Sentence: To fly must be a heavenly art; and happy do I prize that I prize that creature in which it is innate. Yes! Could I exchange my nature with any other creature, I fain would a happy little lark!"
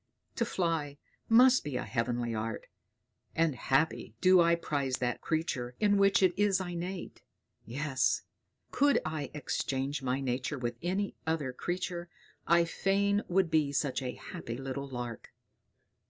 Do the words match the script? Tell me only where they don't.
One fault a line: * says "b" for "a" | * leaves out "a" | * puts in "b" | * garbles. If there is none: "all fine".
* leaves out "I prize that"
* puts in "be such"